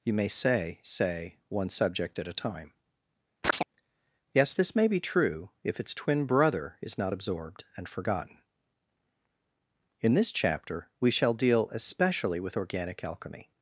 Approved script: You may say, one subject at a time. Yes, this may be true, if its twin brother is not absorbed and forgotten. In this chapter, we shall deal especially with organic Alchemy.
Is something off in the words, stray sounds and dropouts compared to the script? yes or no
yes